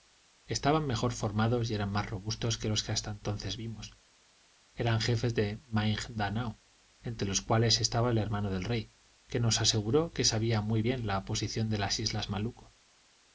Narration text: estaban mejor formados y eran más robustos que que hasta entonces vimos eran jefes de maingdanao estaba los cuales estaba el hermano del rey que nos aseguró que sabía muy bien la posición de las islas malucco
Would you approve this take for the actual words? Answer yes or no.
no